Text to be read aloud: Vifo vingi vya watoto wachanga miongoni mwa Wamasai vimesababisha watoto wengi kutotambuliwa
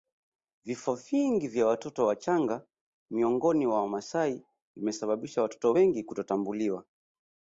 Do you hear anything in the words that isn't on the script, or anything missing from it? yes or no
no